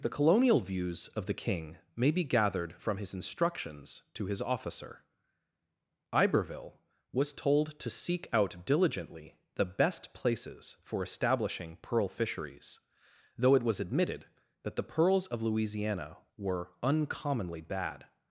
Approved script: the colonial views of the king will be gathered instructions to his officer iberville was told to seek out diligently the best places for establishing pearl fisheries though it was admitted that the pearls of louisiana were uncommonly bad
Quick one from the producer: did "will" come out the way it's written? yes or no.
no